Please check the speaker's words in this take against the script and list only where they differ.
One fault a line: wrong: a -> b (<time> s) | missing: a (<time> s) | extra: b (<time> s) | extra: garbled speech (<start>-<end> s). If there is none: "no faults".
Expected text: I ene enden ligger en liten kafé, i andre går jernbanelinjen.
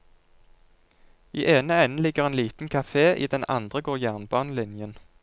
extra: den (3.3 s)